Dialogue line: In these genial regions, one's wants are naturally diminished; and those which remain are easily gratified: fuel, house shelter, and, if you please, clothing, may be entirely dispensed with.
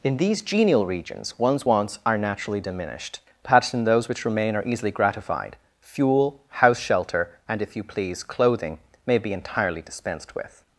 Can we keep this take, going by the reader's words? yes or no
no